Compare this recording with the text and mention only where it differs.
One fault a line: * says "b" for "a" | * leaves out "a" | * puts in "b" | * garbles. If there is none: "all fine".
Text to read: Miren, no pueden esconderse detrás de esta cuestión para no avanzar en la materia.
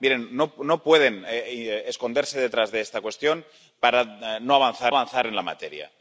* puts in "avanzar"